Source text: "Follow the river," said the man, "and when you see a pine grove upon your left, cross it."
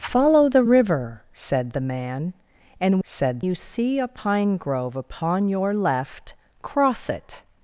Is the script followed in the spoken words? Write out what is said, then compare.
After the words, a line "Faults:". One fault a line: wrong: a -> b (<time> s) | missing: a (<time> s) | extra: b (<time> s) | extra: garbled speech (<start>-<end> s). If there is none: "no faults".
"Follow the river," said the man, "and said you see a pine grove upon your left, cross it."
Faults:
wrong: when -> said (3.0 s)